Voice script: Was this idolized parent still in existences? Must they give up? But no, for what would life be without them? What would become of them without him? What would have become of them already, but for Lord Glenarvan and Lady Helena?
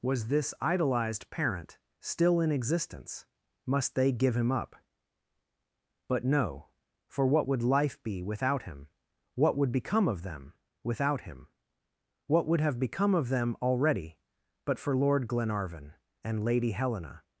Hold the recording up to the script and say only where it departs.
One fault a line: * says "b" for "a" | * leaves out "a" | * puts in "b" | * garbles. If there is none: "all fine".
* says "existence" for "existences"
* puts in "him"
* says "him" for "them"